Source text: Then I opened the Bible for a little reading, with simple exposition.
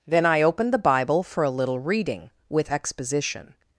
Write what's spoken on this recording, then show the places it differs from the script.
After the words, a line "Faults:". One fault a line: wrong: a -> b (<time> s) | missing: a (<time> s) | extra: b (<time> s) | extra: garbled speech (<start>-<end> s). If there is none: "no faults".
Then I opened the Bible for a little reading, with exposition.
Faults:
missing: simple (2.7 s)